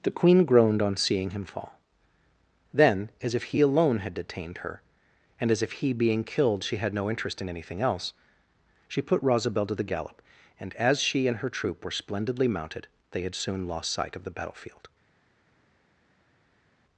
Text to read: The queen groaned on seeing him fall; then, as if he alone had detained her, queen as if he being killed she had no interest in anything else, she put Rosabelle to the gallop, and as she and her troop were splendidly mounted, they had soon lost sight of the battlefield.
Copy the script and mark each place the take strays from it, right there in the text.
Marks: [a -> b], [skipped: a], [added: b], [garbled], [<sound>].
The queen groaned on seeing him fall; then, as if he alone had detained her, [queen -> and] as if he being killed she had no interest in anything else, she put Rosabelle to the gallop, and as she and her troop were splendidly mounted, they had soon lost sight of the battlefield.